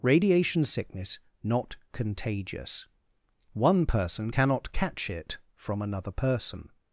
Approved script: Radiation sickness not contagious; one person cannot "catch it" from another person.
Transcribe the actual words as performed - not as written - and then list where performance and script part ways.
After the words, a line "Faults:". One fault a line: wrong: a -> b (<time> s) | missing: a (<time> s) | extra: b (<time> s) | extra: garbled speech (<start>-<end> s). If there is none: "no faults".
Radiation sickness not contagious; one person cannot "catch it" from another person.
Faults:
no faults